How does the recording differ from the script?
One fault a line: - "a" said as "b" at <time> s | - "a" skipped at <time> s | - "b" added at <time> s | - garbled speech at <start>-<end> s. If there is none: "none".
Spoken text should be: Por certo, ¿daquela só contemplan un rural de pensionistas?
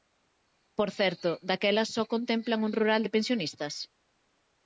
none